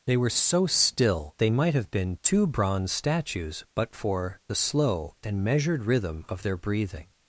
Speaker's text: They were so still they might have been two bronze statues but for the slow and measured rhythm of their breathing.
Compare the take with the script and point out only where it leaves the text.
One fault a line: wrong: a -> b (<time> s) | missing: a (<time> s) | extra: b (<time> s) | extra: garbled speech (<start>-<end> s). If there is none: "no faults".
no faults